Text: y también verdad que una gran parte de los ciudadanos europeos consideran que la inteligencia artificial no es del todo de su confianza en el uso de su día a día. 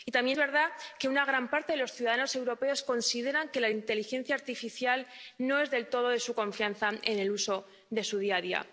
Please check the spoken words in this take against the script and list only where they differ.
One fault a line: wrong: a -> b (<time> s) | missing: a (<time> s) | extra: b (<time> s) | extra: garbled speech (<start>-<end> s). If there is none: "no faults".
no faults